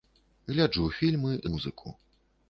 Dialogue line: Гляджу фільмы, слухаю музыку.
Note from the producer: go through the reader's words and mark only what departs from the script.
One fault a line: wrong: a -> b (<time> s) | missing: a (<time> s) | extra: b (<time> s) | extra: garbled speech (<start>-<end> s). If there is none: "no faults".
missing: слухаю (1.3 s)